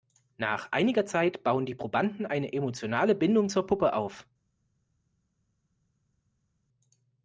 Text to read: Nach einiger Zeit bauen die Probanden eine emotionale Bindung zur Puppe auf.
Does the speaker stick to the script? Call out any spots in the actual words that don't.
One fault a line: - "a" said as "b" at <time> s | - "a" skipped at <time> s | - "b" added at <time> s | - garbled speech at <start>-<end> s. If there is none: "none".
none